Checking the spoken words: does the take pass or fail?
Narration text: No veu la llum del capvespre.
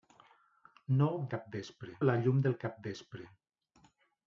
fail